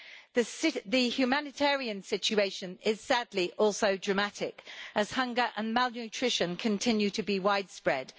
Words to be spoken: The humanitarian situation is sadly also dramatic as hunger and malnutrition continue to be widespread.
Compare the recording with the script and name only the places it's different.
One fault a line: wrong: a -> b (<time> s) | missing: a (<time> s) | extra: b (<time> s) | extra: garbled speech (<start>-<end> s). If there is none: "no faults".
no faults